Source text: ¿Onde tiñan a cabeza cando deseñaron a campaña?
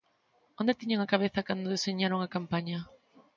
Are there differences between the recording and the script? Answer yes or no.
no